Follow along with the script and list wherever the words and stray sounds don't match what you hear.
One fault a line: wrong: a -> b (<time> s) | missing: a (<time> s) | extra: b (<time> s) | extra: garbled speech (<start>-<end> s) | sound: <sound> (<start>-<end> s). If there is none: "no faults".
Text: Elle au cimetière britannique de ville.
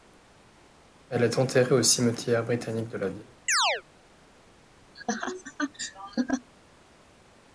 extra: est enterrée (1.2 s)
extra: la (3.0 s)
sound: chirp (3.5-3.8 s)
sound: laugh (4.9-6.5 s)